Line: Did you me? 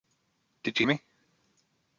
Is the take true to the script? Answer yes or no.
yes